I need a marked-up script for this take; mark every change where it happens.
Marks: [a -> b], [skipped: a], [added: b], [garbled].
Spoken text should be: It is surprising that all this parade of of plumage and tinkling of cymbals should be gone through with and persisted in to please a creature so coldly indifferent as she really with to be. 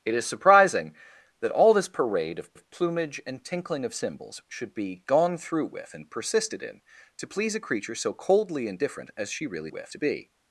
It is surprising that all this parade of of plumage and tinkling of cymbals should be gone through with and persisted in to please a creature so coldly indifferent as she really with to be.